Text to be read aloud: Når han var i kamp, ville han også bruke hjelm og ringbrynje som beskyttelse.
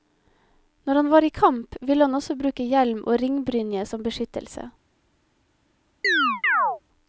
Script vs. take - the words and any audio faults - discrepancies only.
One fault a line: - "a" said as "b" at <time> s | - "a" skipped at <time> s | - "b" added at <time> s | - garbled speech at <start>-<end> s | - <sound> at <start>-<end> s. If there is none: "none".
- chirp at 6.0-6.8 s